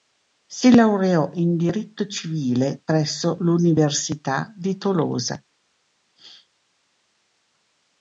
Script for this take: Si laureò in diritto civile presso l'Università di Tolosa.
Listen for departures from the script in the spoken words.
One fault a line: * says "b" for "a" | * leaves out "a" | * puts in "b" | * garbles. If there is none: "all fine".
all fine